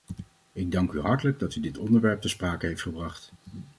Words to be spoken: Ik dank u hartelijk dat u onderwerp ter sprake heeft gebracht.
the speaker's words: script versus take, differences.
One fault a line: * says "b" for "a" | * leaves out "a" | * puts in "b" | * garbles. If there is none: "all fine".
* puts in "dit"